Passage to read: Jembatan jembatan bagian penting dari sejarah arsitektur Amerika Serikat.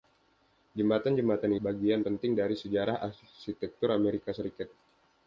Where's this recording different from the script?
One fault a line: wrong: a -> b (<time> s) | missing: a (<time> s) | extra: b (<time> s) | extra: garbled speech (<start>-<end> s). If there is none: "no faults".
no faults